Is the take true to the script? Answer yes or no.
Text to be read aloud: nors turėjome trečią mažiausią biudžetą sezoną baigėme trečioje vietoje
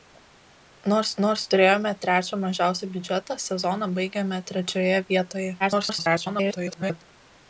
no